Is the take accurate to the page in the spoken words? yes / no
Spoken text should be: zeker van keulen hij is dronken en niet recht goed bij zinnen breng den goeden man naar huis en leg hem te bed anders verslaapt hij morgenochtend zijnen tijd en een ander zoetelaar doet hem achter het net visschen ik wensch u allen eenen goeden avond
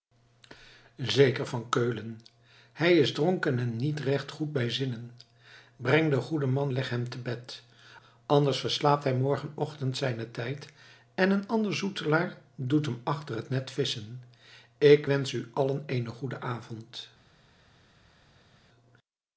no